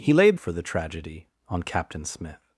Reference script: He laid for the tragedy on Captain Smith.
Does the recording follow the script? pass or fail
pass